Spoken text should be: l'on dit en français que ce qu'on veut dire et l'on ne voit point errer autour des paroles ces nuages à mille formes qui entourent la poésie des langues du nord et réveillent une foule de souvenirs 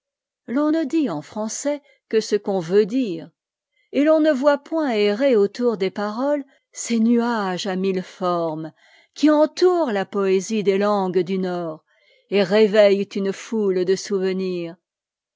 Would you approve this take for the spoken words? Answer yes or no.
no